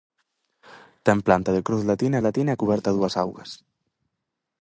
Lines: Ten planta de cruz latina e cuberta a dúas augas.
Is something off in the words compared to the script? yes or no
yes